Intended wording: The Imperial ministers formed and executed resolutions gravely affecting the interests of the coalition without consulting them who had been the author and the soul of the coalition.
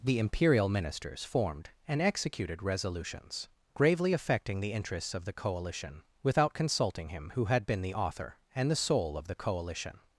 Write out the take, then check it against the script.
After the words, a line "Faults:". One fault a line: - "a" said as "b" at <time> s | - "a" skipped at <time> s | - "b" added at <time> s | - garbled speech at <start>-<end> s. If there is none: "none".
The Imperial ministers formed and executed resolutions gravely affecting the interests of the coalition without consulting him who had been the author and the soul of the coalition.
Faults:
- "them" said as "him" at 7.1 s